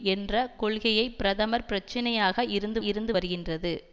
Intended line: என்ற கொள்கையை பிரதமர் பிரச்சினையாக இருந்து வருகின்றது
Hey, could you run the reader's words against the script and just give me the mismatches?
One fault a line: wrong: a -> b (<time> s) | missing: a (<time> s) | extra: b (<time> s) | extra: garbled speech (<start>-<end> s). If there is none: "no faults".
extra: இருந்து (2.8 s)